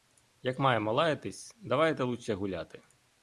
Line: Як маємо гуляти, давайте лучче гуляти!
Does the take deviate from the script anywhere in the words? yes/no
yes